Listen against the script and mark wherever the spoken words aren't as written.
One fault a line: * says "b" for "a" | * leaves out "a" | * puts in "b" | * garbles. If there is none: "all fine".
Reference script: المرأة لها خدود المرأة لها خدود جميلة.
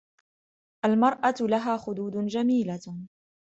* leaves out "المرأة لها خدود"